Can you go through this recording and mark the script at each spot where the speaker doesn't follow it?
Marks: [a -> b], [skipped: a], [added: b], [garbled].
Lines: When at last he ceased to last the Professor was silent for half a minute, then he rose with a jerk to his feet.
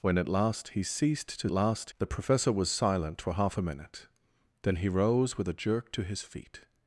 When at last he ceased to last the Professor was silent for half a minute, then he rose with a jerk to his feet.